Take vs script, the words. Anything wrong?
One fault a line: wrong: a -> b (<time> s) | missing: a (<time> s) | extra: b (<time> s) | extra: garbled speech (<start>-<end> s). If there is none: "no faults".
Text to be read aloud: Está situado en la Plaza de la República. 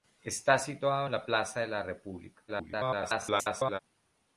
extra: garbled speech (2.5-3.8 s)